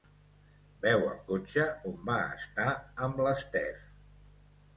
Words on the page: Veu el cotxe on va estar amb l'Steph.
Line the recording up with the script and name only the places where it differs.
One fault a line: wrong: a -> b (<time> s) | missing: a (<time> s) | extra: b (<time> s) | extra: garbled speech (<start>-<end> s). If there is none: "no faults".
no faults